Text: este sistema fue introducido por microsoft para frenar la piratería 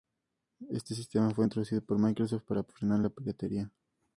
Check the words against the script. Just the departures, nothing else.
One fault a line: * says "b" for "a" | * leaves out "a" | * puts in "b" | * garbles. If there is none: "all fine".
all fine